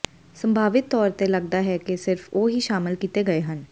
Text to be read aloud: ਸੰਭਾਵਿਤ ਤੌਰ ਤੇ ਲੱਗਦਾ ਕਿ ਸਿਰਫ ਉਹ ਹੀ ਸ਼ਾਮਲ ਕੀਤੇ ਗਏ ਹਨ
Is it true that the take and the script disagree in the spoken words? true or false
true